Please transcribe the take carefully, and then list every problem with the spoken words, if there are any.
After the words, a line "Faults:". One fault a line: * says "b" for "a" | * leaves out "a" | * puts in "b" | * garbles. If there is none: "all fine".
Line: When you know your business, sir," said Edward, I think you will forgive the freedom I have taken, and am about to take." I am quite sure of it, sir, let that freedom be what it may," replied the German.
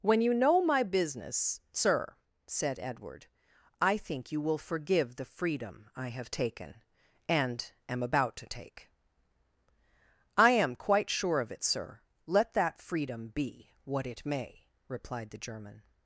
When you know my business, sir," said Edward, I think you will forgive the freedom I have taken, and am about to take." I am quite sure of it, sir, let that freedom be what it may," replied the German.
Faults:
* says "my" for "your"